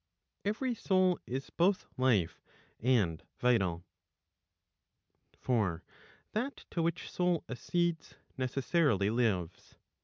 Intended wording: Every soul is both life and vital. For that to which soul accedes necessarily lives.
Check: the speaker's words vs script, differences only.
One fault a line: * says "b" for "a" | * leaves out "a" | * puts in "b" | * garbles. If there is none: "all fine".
all fine